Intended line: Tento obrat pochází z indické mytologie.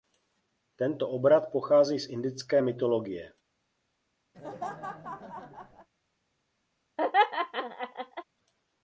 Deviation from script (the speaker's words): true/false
false